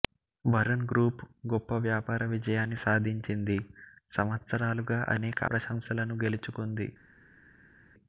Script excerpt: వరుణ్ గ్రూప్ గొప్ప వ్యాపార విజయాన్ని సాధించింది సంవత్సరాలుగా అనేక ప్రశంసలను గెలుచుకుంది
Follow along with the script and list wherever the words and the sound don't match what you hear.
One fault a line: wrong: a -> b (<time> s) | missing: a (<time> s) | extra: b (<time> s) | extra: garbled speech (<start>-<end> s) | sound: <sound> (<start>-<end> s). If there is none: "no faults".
no faults